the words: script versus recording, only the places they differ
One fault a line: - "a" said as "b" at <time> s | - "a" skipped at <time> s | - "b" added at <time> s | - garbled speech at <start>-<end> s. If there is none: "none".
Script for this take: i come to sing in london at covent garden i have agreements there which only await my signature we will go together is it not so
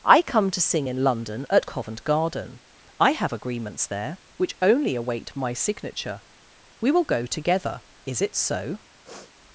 - "not" skipped at 8.4 s